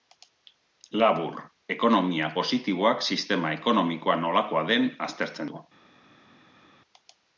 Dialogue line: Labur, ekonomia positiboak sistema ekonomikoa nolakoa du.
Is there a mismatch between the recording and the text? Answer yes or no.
yes